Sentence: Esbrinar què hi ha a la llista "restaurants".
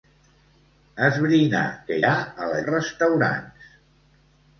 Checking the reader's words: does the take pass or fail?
fail